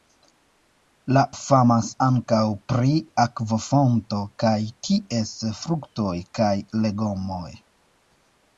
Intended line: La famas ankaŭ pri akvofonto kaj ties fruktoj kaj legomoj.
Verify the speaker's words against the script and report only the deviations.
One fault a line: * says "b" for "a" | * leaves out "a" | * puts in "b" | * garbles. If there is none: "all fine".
all fine